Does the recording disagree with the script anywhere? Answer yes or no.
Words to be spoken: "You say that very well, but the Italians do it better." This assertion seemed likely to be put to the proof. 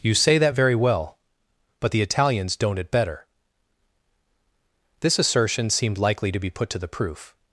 yes